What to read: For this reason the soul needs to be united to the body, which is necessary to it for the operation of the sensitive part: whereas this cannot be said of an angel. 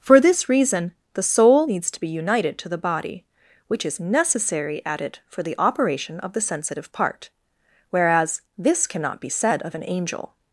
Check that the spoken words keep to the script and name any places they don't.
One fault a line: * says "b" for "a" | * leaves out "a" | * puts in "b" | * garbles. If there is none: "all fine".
* says "at" for "to"